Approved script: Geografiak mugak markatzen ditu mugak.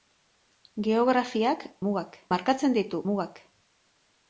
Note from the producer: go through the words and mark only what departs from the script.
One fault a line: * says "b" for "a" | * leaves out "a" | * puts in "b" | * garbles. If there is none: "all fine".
all fine